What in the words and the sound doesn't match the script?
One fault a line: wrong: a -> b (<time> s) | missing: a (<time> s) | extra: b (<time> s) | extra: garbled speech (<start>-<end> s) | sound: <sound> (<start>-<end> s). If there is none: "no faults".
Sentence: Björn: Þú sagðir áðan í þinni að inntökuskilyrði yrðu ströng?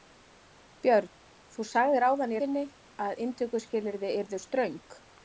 no faults